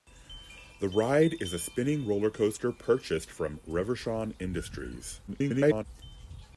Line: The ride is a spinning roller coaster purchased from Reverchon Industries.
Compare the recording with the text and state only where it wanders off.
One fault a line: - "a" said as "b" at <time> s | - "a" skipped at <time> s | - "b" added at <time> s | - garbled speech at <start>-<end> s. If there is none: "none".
- garbled speech at 5.3-5.8 s